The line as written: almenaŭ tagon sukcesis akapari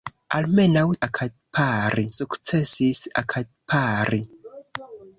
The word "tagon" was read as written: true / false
false